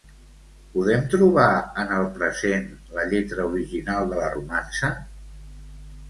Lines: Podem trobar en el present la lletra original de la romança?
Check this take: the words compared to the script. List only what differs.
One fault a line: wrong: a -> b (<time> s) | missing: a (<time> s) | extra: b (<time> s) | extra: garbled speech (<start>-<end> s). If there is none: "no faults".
no faults